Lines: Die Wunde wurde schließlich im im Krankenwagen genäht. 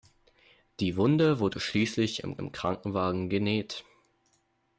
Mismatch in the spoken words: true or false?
false